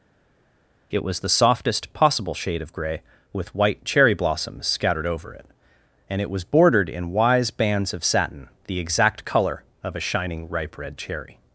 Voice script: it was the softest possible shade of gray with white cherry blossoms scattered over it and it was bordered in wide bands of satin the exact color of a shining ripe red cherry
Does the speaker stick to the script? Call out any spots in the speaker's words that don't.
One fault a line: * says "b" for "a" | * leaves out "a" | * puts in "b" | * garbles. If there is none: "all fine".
* says "wise" for "wide"